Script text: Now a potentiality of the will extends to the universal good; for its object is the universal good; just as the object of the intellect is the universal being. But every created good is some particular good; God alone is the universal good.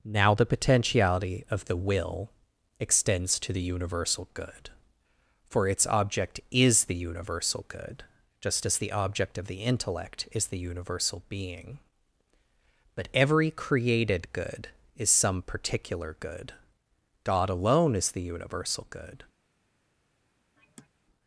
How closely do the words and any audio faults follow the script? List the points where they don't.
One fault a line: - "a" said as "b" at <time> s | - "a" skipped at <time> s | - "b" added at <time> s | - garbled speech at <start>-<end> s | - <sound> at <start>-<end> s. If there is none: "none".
- "a" said as "the" at 0.3 s
- sigh at 20.6-20.9 s